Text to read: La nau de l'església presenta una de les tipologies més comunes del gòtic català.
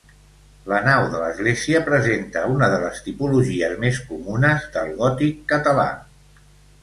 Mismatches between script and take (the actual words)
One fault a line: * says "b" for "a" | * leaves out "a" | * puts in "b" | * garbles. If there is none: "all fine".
all fine